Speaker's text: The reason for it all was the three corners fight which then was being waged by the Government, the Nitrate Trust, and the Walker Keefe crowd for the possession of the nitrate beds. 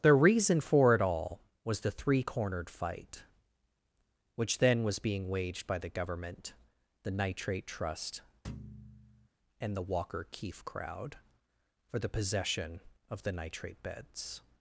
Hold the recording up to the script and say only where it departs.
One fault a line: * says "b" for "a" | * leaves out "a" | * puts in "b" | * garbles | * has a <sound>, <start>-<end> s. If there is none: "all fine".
* says "cornered" for "corners"
* has a thud, 8.4-9.3 s